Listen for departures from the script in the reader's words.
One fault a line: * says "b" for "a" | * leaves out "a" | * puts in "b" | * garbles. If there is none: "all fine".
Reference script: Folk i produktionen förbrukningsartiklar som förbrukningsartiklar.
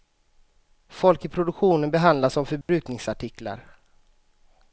* says "behandlas" for "förbrukningsartiklar"